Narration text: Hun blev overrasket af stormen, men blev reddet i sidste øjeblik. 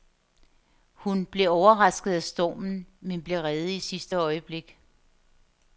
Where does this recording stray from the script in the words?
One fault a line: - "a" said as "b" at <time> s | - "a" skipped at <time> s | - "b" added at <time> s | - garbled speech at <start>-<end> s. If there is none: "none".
none